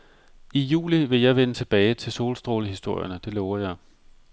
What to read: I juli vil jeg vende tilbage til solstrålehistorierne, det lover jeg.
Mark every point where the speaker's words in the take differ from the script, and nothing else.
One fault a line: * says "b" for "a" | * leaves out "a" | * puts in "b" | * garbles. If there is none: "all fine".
all fine